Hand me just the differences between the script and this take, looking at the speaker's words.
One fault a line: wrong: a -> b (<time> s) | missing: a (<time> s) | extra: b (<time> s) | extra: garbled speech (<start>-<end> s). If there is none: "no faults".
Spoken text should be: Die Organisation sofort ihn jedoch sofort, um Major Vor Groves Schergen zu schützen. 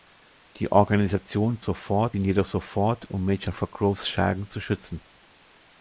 no faults